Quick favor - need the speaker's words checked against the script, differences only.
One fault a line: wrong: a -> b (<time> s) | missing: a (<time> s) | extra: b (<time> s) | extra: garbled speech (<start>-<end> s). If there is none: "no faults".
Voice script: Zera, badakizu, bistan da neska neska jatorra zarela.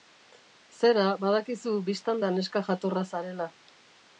missing: neska (2.6 s)